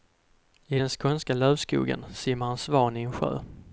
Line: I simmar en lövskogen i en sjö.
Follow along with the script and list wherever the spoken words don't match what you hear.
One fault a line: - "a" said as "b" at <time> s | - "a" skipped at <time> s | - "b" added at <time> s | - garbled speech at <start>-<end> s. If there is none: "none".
- "den skånska lövskogen" added at 0.8 s
- "lövskogen" said as "svan" at 2.6 s